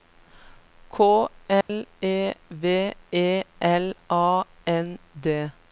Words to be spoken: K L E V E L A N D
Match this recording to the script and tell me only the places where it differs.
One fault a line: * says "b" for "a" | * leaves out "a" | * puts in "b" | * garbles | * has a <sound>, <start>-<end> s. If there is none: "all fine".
* has a dropout, 1.6-1.7 s